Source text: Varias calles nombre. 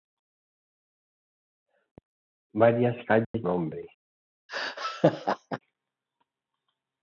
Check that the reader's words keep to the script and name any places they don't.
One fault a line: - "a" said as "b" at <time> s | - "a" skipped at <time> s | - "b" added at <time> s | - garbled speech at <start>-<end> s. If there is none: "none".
none